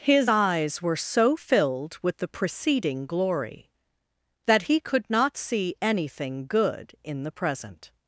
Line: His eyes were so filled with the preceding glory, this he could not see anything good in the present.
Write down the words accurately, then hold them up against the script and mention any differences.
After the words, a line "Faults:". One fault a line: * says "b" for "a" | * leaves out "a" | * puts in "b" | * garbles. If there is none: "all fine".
His eyes were so filled with the preceding glory, that he could not see anything good in the present.
Faults:
* says "that" for "this"